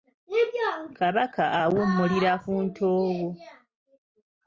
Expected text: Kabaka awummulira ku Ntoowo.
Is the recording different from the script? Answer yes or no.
no